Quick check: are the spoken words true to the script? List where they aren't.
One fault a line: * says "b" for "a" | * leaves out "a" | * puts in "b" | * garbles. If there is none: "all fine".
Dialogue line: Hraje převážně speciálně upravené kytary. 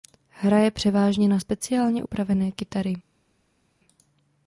* puts in "na"